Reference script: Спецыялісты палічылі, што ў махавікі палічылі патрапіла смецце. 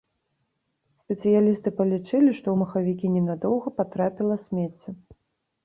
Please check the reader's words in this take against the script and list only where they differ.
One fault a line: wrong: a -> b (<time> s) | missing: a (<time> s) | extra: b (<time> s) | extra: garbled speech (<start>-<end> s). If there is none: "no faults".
wrong: палічылі -> ненадоўга (3.2 s)